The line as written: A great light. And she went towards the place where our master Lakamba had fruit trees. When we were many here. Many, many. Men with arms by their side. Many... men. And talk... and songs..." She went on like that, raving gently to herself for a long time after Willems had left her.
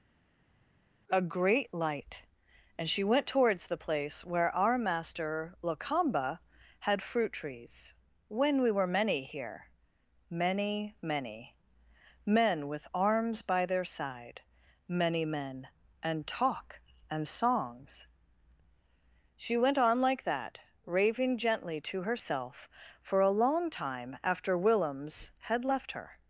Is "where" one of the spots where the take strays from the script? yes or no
no